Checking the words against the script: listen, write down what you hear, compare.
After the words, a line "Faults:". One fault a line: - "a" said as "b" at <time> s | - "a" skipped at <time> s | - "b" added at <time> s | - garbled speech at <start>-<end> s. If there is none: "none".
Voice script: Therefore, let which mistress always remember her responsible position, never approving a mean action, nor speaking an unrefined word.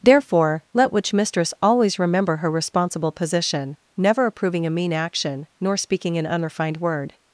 Therefore, let which mistress always remember her responsible position, never approving a mean action, nor speaking an unrefined word.
Faults:
none